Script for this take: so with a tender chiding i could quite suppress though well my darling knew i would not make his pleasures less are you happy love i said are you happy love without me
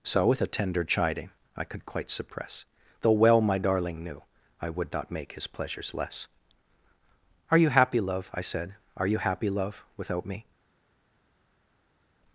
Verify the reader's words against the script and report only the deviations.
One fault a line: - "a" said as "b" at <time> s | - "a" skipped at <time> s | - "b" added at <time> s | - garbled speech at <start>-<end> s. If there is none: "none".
none